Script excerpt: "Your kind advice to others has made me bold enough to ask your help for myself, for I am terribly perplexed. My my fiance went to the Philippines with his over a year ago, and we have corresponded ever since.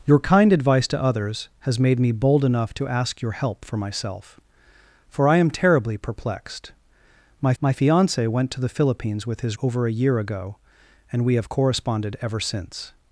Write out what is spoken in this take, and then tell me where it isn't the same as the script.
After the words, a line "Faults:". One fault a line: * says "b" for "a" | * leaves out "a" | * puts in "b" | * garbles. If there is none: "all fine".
"Your kind advice to others has made me bold enough to ask your help for myself, for I am terribly perplexed. My my fiance went to the Philippines with his over a year ago, and we have corresponded ever since.
Faults:
all fine